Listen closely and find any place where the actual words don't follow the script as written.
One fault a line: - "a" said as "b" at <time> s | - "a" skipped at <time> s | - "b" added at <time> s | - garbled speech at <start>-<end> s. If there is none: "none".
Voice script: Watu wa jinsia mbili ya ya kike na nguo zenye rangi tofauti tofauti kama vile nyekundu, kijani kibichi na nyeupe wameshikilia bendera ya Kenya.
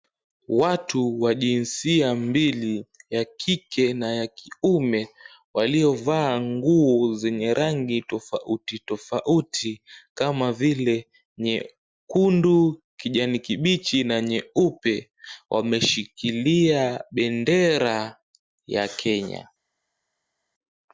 - "kike na" added at 3.2 s
- "kike na" said as "kiume waliovaa" at 4.3 s